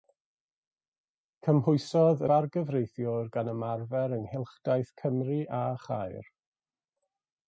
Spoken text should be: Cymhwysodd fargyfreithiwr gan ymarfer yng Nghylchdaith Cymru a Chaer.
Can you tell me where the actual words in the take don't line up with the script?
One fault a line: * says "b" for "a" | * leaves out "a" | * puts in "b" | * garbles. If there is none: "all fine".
all fine